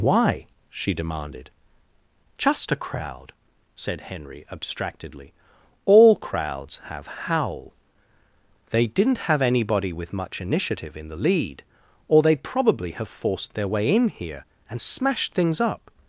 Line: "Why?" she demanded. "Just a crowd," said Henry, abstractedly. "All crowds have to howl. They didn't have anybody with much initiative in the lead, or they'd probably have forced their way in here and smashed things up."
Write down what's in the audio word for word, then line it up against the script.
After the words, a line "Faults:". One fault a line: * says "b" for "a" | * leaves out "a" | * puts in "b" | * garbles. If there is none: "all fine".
"Why?" she demanded. "Just a crowd," said Henry, abstractedly. "All crowds have howl. They didn't have anybody with much initiative in the lead, or they'd probably have forced their way in here and smashed things up."
Faults:
* leaves out "to"